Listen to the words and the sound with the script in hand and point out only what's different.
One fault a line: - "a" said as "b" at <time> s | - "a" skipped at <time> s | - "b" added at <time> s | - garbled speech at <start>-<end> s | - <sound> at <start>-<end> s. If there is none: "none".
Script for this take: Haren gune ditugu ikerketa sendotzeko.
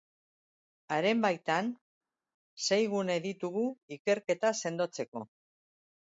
- "baitan sei" added at 1.2 s